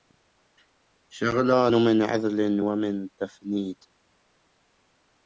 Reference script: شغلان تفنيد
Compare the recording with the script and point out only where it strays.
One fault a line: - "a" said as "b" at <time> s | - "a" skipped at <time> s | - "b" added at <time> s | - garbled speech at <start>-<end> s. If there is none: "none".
- "من عذل ومن" added at 1.7 s